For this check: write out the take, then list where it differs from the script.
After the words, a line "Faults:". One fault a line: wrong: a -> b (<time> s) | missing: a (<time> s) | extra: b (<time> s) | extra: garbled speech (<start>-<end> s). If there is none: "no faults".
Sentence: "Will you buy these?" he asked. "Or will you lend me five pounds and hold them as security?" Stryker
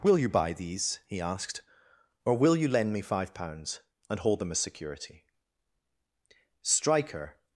"Will you buy these?" he asked. "Or will you lend me five pounds and hold them as security?" Stryker
Faults:
no faults